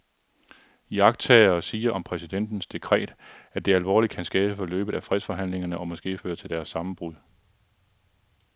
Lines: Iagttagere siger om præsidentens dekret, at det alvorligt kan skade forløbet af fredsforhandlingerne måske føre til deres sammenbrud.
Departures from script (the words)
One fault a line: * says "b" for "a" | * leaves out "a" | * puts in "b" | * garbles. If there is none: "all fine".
* puts in "og"